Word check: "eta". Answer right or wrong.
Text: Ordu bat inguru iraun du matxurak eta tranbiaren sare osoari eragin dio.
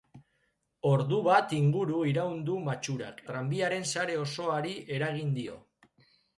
wrong